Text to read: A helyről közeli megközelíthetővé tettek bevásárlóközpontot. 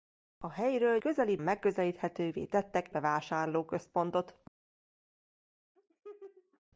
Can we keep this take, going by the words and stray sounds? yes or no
no